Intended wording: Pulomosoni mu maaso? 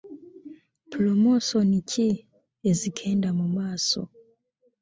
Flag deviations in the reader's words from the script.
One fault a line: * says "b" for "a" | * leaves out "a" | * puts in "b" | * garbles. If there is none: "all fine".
* puts in "ki ezigenda"